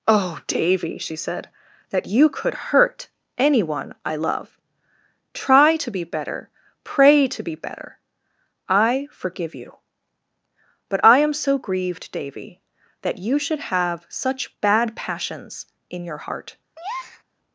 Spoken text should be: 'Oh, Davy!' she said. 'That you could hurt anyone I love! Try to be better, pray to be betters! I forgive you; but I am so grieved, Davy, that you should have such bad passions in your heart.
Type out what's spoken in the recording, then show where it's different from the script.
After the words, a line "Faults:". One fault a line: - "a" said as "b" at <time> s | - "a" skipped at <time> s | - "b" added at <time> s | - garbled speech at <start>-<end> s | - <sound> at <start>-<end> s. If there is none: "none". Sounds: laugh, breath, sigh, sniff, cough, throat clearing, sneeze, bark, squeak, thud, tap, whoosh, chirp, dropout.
'Oh, Davy!' she said. 'That you could hurt anyone I love! Try to be better, pray to be better! I forgive you; but I am so grieved, Davy, that you should have such bad passions in your heart.
Faults:
- "betters" said as "better" at 7.5 s
- breath at 16.8-17.2 s